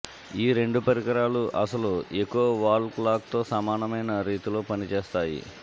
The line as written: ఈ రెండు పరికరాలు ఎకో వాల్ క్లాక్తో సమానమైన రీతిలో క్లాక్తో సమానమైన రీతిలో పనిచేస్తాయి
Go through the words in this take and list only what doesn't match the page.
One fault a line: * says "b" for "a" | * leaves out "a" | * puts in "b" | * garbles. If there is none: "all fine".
* puts in "అసలు"
* leaves out "క్లాక్తో సమానమైన రీతిలో"